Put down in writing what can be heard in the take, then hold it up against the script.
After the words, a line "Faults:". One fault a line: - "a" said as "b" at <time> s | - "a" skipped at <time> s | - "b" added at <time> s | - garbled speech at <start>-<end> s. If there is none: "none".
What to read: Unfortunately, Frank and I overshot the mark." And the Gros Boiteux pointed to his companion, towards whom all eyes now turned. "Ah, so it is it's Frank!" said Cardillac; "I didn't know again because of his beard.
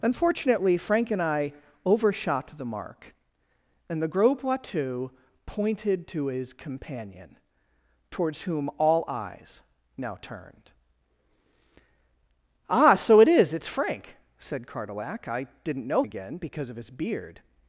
Unfortunately, Frank and I overshot the mark." And the Gros Boiteux pointed to his companion, towards whom all eyes now turned. "Ah, so it is it's Frank!" said Cardillac; "I didn't know again because of his beard.
Faults:
none